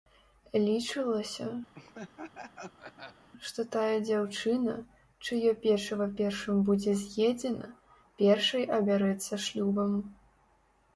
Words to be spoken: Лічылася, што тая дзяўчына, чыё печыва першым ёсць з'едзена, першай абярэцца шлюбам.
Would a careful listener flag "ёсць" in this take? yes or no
yes